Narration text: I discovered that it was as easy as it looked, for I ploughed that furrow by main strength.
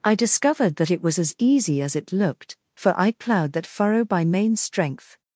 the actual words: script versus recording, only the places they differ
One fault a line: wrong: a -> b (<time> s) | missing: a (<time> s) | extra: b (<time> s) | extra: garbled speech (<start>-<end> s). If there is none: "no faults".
no faults